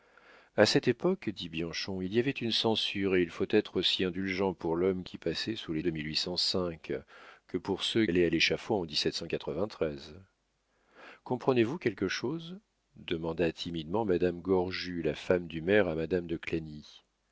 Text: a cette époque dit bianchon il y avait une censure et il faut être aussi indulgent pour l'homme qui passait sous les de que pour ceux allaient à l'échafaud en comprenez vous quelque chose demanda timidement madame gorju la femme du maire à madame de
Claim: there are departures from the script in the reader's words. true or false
false